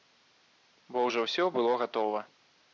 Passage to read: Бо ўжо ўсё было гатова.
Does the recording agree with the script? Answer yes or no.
yes